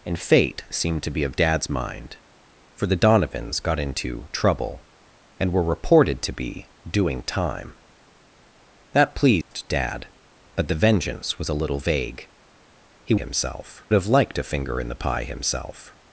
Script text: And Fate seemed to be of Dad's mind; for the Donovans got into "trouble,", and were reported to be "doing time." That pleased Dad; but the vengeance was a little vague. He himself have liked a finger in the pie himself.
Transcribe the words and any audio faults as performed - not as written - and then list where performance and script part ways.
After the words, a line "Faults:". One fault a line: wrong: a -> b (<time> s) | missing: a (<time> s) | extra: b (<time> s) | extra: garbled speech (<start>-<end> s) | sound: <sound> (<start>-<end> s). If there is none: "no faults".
And Fate seemed to be of Dad's mind; for the Donovans got into "trouble,", and were reported to be "doing time." That pleased Dad; but the vengeance was a little vague. He himself have liked a finger in the pie himself.
Faults:
sound: dropout (9.4-9.5 s)